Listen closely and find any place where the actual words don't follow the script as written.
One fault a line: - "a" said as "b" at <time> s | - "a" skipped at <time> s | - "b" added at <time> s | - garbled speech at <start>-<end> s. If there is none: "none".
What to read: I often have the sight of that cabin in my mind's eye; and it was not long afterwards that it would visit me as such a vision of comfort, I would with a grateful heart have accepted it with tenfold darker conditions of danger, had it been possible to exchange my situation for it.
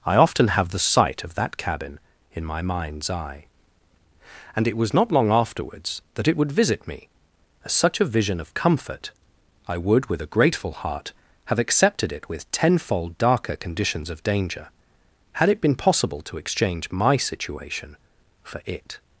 none